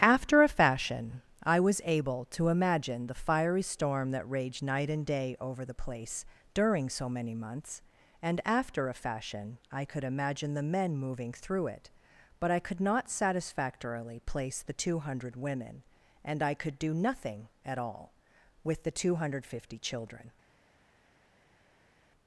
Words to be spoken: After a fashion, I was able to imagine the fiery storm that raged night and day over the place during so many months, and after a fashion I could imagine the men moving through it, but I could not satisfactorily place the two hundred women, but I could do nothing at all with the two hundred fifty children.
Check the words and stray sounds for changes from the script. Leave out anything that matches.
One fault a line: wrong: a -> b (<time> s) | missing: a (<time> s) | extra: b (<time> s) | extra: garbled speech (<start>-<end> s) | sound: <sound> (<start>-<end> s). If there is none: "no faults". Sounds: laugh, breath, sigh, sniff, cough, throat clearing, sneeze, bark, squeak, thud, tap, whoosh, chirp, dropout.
wrong: but -> and (16.2 s)